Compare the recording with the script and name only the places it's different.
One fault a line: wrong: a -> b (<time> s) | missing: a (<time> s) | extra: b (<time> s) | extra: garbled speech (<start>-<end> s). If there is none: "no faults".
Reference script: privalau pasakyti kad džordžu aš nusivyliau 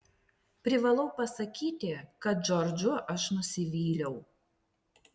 no faults